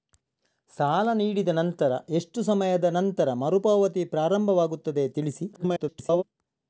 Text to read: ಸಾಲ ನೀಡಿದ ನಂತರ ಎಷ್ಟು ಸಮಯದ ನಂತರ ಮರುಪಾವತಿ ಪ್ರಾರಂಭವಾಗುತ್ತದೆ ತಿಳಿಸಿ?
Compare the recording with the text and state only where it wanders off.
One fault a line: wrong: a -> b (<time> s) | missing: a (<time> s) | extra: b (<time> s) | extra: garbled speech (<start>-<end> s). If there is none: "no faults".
extra: garbled speech (5.5-6.2 s)